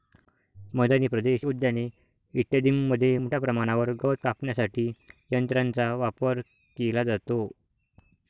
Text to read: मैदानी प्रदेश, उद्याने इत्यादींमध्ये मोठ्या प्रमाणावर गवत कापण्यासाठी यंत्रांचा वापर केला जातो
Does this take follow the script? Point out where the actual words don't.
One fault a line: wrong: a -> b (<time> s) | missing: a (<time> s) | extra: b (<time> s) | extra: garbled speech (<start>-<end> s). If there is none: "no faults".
no faults